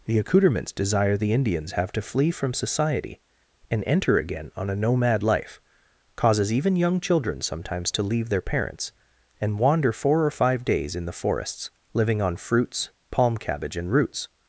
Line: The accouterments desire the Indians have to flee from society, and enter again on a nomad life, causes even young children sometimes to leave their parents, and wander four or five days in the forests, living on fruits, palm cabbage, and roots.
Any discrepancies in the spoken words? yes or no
no